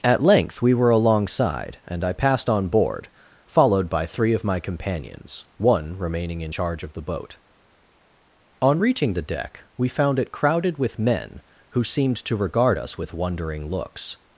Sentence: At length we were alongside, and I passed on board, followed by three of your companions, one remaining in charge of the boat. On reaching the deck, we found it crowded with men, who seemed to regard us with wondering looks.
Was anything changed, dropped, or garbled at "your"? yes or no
yes